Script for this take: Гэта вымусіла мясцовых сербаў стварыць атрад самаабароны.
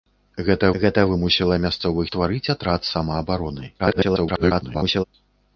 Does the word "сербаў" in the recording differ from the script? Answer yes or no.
yes